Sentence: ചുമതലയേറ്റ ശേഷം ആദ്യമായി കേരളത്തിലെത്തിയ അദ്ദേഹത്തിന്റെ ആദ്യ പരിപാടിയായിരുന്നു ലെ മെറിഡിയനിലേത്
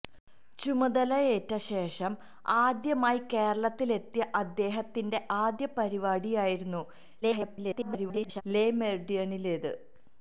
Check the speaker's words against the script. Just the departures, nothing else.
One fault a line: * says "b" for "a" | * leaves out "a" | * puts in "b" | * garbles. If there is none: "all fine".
* garbles